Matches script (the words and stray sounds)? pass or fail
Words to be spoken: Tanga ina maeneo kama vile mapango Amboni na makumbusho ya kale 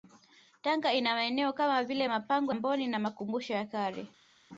pass